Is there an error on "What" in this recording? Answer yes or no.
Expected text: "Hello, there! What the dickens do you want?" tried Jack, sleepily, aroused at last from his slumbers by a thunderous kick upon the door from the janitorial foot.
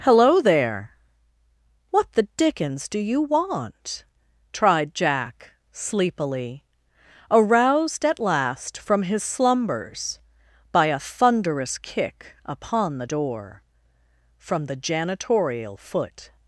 no